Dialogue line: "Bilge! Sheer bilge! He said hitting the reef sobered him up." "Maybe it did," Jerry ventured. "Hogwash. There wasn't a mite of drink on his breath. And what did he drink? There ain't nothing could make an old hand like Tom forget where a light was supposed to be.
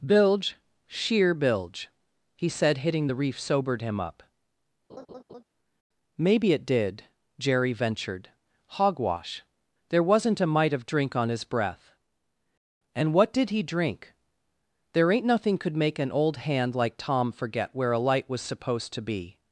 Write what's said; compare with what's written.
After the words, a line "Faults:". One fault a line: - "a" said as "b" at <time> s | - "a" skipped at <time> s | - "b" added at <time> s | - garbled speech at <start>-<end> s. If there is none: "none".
"Bilge! Sheer bilge! He said hitting the reef sobered him up." "Maybe it did," Jerry ventured. "Hogwash. There wasn't a mite of drink on his breath. And what did he drink? There ain't nothing could make an old hand like Tom forget where a light was supposed to be.
Faults:
none